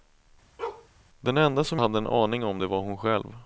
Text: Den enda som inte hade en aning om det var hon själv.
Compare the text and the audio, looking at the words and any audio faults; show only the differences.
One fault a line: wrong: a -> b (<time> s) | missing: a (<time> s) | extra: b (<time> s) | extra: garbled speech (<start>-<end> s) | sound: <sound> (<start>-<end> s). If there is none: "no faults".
sound: bark (0.6-0.9 s)
missing: inte (1.8 s)